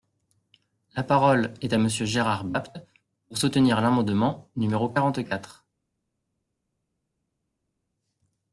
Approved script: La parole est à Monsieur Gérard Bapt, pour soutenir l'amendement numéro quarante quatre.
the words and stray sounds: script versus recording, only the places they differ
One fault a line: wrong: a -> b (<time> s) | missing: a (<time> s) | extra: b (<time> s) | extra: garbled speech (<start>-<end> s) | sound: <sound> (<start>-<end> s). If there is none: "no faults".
no faults